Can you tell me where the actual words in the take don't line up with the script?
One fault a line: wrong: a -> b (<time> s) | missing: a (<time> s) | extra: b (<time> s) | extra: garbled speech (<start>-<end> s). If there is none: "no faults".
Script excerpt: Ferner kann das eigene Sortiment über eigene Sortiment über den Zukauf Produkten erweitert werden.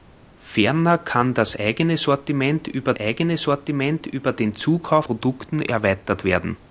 no faults